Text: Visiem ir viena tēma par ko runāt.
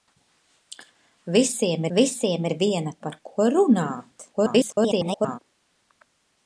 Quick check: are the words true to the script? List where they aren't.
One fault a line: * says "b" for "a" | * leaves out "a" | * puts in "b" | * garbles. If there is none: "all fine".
* puts in "visiem"
* leaves out "tēma"
* garbles